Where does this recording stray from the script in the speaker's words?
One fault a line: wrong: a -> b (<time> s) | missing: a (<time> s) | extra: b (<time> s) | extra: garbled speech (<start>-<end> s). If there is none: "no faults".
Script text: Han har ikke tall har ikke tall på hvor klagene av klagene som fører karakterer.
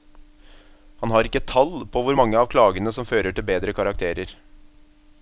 missing: har ikke tall (1.7 s)
wrong: klagene -> mange (2.2 s)
extra: til bedre (3.3 s)